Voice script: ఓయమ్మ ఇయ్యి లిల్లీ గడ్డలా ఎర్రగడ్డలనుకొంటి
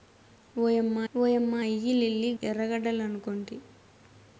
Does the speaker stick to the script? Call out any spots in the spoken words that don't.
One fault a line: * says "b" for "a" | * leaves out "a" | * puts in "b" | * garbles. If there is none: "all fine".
* puts in "ఓయమ్మ"
* leaves out "గడ్డలా"